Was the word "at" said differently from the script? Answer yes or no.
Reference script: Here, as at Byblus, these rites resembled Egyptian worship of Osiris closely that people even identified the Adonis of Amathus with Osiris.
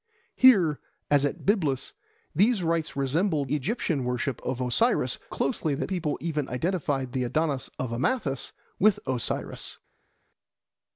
no